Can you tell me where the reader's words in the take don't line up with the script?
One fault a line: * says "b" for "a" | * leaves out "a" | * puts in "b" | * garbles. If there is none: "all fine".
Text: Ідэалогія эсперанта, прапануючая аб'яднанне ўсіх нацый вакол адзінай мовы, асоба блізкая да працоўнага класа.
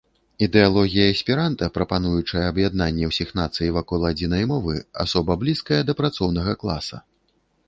all fine